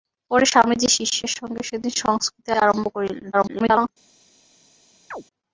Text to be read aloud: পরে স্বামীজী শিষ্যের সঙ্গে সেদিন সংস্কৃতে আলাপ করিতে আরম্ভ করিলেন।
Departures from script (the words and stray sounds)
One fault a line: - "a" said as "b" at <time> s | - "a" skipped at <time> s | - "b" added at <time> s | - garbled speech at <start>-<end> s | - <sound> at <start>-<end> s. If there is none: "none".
- "আলাপ করিতে" skipped at 2.5 s
- garbled speech at 3.3-3.9 s
- chirp at 5.1-5.2 s